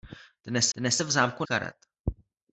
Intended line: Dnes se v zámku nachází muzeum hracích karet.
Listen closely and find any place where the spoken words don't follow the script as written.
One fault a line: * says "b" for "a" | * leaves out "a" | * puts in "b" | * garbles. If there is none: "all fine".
* puts in "dnes"
* leaves out "nachází muzeum hracích"